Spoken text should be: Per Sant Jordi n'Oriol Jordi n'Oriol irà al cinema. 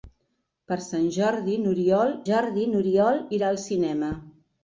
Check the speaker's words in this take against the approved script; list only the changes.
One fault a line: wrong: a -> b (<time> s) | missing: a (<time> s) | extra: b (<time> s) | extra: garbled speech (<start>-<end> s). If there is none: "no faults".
no faults